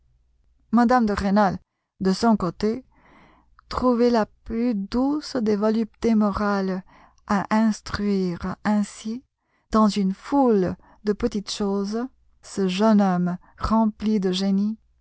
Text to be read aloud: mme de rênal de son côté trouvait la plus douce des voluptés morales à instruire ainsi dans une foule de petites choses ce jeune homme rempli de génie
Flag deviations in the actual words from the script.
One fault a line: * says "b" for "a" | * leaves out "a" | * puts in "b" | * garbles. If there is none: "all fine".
all fine